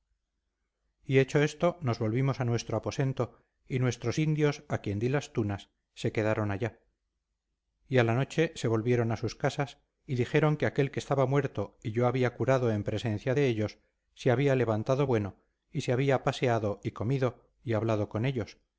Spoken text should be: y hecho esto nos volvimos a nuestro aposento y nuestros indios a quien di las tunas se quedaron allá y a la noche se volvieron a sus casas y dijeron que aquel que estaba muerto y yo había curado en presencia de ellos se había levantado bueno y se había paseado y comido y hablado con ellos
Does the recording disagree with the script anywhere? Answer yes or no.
no